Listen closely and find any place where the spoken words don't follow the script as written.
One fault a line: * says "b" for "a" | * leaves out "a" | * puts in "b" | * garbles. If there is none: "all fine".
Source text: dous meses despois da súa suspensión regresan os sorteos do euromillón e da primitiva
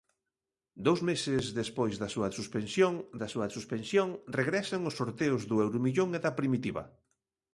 * puts in "da súa suspensión"